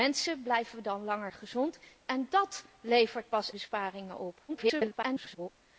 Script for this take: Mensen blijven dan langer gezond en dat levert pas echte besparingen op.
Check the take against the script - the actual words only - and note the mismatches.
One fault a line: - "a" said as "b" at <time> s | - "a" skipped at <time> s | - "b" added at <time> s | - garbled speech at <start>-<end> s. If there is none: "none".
- "echte" skipped at 3.5 s
- garbled speech at 4.5-5.5 s